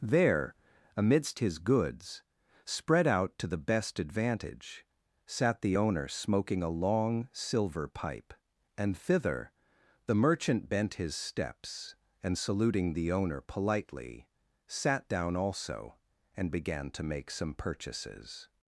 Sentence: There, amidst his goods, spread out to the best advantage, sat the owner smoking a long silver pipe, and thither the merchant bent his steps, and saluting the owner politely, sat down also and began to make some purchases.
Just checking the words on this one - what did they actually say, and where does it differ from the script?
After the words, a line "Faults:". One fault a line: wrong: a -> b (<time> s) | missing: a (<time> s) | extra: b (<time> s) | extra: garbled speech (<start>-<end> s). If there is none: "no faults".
There, amidst his goods, spread out to the best advantage, sat the owner smoking a long silver pipe, and thither the merchant bent his steps, and saluting the owner politely, sat down also and began to make some purchases.
Faults:
no faults